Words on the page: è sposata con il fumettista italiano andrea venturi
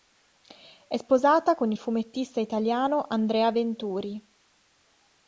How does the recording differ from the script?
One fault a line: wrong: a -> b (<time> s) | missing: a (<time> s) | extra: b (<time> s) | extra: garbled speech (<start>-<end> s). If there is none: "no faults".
no faults